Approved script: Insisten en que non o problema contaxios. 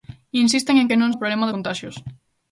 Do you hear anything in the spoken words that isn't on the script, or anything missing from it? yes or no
no